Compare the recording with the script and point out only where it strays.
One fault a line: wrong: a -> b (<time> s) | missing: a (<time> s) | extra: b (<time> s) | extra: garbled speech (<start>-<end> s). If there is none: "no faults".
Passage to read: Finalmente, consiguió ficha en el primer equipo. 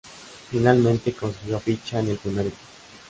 no faults